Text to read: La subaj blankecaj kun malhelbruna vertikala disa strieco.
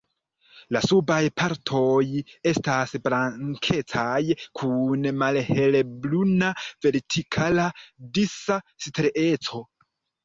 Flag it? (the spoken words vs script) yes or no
yes